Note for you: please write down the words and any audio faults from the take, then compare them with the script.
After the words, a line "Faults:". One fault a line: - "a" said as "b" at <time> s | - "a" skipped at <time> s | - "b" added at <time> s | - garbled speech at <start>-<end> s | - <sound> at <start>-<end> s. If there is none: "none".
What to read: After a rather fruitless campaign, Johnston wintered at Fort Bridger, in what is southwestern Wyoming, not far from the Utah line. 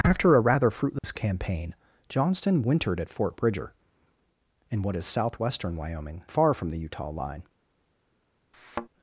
After a rather fruitless campaign, Johnston wintered at Fort Bridger, in what is southwestern Wyoming, far from the Utah line.
Faults:
- dropout at 1.0-1.0 s
- "not" skipped at 6.2 s
- thud at 8.5-8.9 s